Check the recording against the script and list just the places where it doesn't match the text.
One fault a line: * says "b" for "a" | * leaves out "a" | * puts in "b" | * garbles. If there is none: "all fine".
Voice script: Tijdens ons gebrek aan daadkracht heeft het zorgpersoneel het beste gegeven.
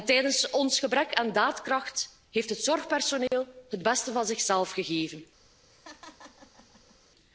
* puts in "van zichzelf"